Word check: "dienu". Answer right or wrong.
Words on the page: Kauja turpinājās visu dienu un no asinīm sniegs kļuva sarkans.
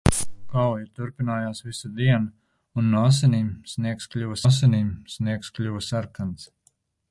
right